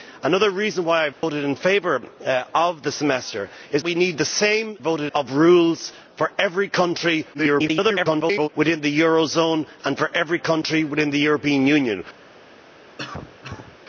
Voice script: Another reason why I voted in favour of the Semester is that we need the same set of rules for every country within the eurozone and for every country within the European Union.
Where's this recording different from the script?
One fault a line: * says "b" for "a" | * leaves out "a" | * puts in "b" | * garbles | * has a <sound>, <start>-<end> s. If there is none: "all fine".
* has a dropout, 1.1-1.2 s
* leaves out "that"
* says "voted" for "set"
* garbles
* has a cough, 13.0-13.8 s